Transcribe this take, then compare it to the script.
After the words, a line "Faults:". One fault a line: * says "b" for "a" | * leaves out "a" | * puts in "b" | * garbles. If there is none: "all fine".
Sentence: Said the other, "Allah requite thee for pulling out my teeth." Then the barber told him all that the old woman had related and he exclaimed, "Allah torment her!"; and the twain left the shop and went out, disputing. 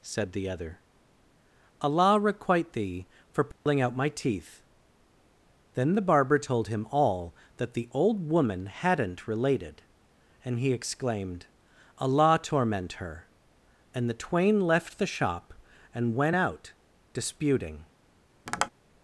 Said the other, "Allah requite thee for pulling out my teeth." Then the barber told him all that the old woman hadn't related and he exclaimed, "Allah torment her!"; and the twain left the shop and went out, disputing.
Faults:
* says "hadn't" for "had"